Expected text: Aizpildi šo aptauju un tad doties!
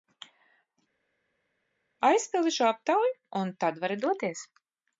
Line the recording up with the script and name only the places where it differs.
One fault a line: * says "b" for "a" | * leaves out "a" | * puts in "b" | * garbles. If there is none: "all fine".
* puts in "vari"